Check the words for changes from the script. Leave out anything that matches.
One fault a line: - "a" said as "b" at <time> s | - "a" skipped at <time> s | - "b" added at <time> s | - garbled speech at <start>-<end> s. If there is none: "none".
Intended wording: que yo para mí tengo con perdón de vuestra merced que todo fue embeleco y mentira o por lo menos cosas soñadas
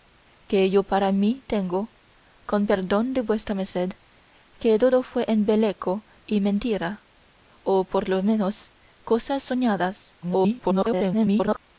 - garbled speech at 10.2-11.6 s